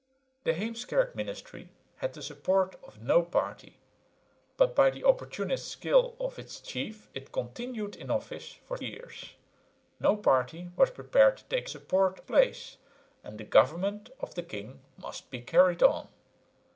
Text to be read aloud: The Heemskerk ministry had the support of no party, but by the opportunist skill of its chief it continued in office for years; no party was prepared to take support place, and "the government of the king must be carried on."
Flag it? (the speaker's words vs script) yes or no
no